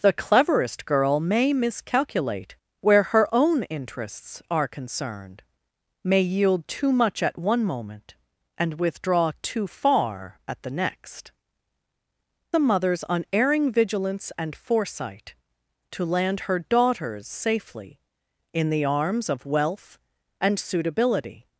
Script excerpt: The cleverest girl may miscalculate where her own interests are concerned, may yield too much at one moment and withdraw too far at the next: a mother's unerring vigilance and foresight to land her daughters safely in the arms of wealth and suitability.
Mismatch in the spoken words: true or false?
false